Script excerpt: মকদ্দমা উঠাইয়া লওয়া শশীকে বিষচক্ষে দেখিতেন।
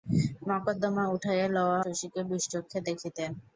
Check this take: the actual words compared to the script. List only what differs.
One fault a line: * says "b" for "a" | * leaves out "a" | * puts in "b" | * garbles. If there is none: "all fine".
all fine